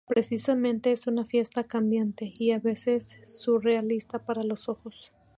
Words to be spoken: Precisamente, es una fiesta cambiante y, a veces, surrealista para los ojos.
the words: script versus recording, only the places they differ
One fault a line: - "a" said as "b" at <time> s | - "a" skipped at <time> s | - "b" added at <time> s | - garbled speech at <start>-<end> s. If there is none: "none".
none